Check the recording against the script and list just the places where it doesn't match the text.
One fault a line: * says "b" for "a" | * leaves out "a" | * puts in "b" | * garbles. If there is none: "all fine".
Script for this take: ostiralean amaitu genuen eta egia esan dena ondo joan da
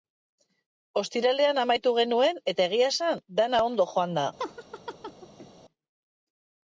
all fine